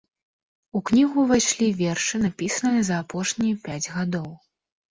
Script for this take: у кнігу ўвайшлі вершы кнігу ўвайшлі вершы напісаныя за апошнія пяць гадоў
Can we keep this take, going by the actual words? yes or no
no